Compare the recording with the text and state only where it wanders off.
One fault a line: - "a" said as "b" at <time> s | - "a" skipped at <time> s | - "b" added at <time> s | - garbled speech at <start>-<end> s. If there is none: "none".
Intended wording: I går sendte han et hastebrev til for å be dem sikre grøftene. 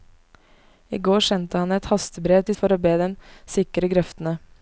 none